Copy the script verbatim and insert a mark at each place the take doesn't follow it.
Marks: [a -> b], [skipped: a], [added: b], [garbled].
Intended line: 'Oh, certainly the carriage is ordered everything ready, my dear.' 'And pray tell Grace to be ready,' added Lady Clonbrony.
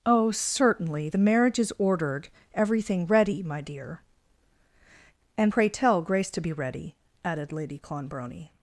'Oh, certainly the [carriage -> marriage] is ordered everything ready, my dear.' 'And pray tell Grace to be ready,' added Lady Clonbrony.